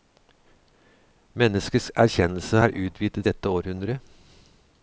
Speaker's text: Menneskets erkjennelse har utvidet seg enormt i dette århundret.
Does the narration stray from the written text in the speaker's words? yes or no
yes